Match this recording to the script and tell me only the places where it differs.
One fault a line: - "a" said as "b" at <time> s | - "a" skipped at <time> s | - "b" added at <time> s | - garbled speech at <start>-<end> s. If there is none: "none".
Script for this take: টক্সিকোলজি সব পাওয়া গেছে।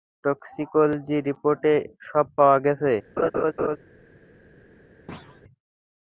- "রিপোর্টে" added at 1.3 s